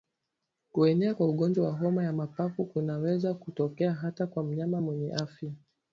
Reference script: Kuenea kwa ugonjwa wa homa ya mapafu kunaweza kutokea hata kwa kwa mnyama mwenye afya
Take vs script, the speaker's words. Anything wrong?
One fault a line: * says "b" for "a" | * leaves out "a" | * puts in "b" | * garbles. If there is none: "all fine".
* leaves out "kwa"